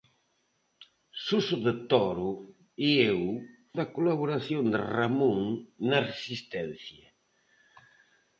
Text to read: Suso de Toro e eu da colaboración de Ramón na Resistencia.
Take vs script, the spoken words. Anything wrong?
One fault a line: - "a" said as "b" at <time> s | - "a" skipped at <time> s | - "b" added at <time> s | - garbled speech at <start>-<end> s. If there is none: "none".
none